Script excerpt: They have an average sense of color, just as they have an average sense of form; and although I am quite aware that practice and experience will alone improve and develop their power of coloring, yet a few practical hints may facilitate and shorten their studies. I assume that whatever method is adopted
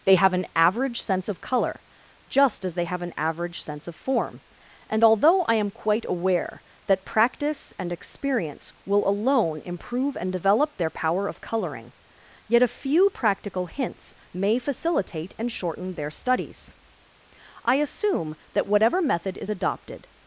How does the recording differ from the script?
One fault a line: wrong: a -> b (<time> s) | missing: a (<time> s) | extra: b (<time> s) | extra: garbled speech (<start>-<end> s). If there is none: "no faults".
no faults